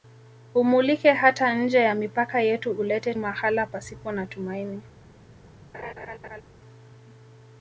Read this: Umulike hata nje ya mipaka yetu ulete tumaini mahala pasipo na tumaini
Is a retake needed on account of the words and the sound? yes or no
yes